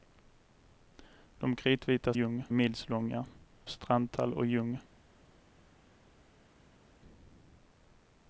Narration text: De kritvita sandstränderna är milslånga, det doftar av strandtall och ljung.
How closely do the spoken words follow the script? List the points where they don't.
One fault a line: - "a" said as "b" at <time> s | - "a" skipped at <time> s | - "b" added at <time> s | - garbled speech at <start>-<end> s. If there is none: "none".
- "sandstränderna" said as "ljung" at 2.1 s
- "det doftar av" skipped at 3.2 s